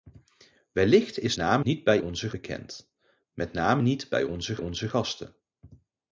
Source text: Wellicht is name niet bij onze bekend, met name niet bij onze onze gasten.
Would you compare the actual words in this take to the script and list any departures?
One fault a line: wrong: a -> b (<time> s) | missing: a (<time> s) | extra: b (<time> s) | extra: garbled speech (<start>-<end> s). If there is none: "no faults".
no faults